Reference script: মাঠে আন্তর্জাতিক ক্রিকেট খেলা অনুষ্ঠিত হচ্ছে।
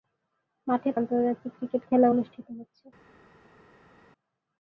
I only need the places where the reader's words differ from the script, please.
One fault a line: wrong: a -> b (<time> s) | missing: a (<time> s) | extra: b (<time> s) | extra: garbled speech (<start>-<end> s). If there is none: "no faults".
no faults